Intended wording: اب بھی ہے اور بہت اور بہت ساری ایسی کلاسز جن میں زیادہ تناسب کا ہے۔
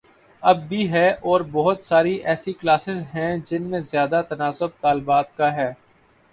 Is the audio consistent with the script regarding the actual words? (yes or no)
no